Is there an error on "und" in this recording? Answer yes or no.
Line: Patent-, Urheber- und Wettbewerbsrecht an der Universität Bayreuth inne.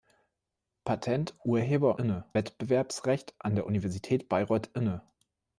yes